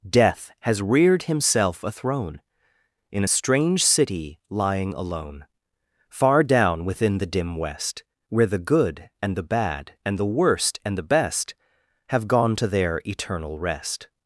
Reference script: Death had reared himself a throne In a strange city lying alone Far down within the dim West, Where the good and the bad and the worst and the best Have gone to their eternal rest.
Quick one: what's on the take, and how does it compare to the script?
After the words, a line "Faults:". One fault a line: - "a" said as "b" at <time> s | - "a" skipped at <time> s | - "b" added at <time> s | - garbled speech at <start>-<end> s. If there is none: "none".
Death has reared himself a throne In a strange city lying alone Far down within the dim West, Where the good and the bad and the worst and the best Have gone to their eternal rest.
Faults:
- "had" said as "has" at 0.6 s